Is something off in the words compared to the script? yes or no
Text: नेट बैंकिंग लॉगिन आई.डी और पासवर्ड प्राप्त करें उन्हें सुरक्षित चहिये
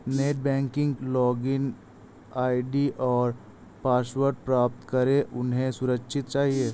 no